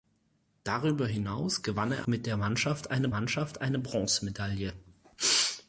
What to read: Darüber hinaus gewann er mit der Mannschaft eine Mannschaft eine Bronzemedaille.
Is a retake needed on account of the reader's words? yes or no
no